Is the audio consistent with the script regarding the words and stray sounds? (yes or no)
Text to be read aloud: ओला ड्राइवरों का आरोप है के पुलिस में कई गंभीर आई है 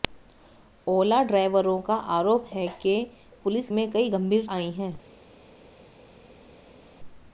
yes